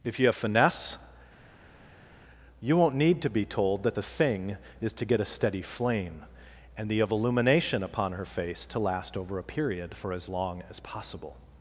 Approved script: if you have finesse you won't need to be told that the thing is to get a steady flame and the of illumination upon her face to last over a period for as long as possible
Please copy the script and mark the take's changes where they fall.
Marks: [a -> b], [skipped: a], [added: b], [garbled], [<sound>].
if you have finesse you won't need to be told that the thing is to get a steady flame and the of illumination upon her face to last over a period for as long as possible